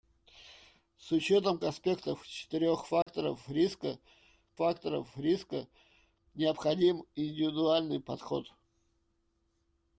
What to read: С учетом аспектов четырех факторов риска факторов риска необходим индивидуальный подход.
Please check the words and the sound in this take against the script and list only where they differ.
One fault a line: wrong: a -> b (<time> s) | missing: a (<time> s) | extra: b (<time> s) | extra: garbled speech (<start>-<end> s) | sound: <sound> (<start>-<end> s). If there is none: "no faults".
sound: dropout (3.0-3.1 s)